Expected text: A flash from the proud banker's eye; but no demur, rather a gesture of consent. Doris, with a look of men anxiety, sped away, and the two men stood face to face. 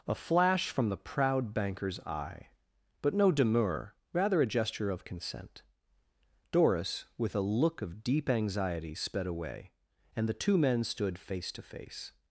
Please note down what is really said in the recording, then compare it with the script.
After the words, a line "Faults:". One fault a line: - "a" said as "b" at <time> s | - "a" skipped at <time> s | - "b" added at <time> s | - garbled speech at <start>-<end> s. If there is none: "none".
A flash from the proud banker's eye; but no demur, rather a gesture of consent. Doris, with a look of deep anxiety, sped away, and the two men stood face to face.
Faults:
- "men" said as "deep" at 8.0 s